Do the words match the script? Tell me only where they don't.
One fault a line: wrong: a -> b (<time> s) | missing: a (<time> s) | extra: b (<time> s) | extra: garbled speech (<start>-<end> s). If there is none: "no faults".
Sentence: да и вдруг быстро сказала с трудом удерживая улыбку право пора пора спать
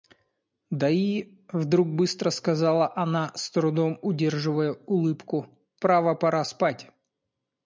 extra: она (3.0 s)
missing: пора (6.4 s)